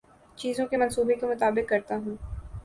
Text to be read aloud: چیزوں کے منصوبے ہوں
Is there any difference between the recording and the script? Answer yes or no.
yes